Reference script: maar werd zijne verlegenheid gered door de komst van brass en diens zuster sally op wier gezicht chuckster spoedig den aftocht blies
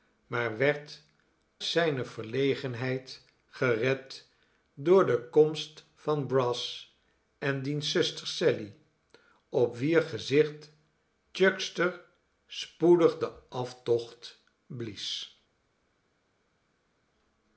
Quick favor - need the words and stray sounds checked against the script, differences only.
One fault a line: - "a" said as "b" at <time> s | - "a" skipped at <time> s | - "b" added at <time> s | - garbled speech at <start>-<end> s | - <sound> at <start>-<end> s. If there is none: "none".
none